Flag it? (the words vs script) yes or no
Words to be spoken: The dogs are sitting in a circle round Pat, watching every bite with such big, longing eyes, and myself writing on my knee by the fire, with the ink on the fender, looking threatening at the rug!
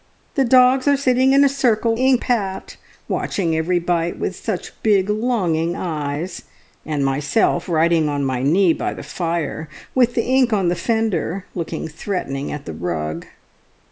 yes